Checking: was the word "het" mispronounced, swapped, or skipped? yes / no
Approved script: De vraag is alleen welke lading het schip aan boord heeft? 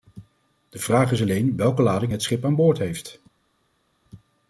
no